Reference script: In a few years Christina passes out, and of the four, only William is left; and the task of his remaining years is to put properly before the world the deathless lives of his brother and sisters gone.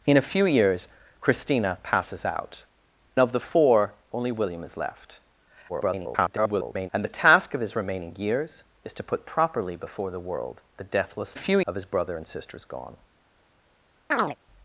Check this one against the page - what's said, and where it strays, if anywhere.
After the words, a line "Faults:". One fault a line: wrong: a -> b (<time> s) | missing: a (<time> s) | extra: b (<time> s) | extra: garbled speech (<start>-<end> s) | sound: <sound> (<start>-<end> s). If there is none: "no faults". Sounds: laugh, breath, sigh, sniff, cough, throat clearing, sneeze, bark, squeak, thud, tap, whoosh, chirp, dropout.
In a few years Christina passes out, of the four, only William is left; [garbled] and the task of his remaining years is to put properly before the world the deathless few of his brother and sisters gone.
Faults:
missing: and (2.6 s)
extra: garbled speech (5.7-6.9 s)
wrong: lives -> few (11.3 s)
sound: chirp (14.1-14.4 s)